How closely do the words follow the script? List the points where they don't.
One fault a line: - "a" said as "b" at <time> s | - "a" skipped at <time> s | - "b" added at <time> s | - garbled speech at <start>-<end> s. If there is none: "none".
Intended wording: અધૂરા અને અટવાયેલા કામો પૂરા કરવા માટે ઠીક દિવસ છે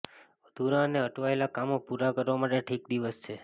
none